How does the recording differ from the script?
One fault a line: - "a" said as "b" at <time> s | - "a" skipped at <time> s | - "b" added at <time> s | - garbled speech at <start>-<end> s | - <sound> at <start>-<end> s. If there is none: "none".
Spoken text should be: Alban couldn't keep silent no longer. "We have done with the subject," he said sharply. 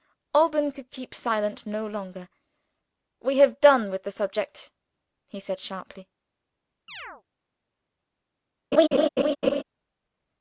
- "couldn't" said as "could" at 0.7 s
- chirp at 6.9-7.2 s
- laugh at 8.7-9.6 s